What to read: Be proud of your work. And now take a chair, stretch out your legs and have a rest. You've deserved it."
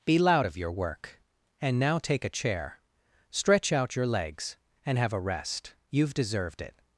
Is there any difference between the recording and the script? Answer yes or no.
yes